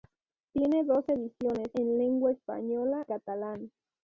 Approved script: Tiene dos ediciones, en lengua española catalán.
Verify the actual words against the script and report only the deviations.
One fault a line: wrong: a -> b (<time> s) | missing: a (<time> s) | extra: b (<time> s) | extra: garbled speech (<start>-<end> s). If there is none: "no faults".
no faults